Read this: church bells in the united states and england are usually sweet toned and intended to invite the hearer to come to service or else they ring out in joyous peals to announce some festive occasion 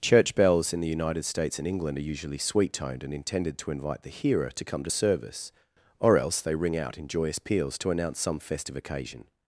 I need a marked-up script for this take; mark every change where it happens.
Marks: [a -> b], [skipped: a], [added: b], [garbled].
church bells in the united states and england are usually sweet toned and intended to invite the hearer to come to service or else they ring out in joyous peals to announce some festive occasion